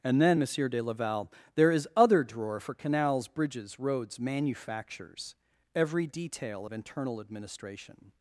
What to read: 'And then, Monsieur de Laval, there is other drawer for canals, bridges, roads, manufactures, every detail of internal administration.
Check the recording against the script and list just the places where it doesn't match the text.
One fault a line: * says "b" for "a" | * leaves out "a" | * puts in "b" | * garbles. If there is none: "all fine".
all fine